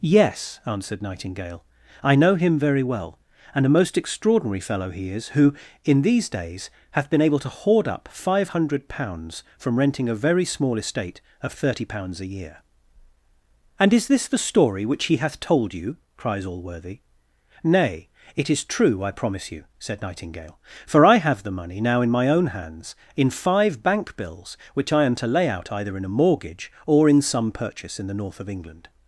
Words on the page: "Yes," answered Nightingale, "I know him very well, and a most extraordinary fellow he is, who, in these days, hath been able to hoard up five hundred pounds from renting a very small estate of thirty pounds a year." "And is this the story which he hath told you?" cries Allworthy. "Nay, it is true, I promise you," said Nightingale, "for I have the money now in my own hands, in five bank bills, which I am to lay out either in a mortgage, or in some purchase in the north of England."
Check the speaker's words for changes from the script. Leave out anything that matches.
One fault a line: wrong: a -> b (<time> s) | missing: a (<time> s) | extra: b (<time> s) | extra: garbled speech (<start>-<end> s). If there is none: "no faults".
no faults